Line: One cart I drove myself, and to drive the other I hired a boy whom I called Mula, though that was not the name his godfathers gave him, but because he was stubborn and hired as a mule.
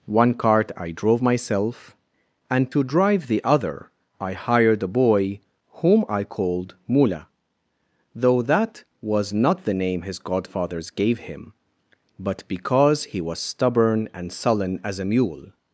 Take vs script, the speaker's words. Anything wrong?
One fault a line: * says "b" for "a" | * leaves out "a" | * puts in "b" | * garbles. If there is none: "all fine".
* says "sullen" for "hired"